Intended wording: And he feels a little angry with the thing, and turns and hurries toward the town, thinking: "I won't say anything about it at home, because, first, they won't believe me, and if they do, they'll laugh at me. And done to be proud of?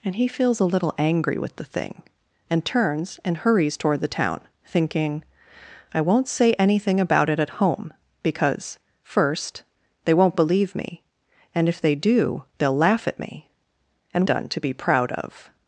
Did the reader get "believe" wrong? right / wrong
right